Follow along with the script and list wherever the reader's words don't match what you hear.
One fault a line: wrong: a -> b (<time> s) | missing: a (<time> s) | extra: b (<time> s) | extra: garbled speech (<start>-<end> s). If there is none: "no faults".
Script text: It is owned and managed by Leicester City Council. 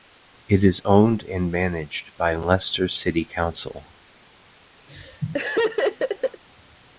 no faults